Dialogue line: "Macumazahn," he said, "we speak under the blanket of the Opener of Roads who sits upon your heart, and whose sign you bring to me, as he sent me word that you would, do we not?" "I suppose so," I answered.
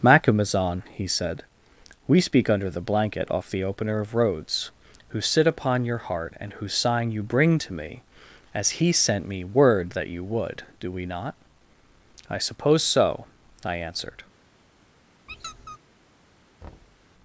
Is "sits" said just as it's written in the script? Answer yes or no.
no